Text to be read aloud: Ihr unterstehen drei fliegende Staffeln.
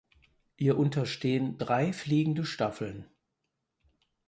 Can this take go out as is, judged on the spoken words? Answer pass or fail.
pass